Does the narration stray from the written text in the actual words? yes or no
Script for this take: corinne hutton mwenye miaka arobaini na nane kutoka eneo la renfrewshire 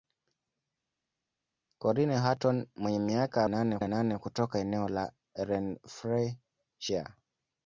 yes